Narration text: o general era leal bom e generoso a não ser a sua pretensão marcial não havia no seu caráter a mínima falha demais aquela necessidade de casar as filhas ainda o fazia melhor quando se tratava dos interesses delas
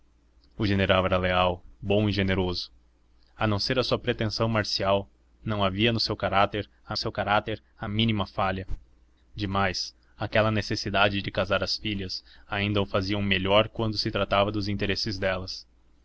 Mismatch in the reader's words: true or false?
true